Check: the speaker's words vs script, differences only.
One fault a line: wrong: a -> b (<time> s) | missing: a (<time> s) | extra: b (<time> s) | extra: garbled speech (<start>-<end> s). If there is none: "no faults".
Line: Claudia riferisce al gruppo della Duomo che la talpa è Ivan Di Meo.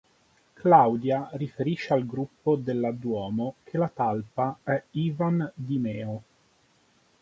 no faults